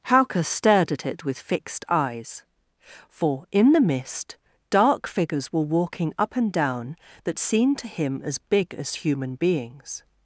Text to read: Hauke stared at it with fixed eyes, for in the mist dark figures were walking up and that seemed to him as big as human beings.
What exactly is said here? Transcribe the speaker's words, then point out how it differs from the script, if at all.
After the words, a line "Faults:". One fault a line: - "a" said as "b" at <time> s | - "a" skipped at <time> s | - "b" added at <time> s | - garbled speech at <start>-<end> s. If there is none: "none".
Hauke stared at it with fixed eyes, for in the mist dark figures were walking up and down that seemed to him as big as human beings.
Faults:
- "down" added at 6.5 s